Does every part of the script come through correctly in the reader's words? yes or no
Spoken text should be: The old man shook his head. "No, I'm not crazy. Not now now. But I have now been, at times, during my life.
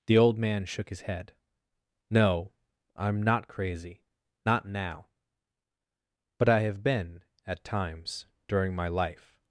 no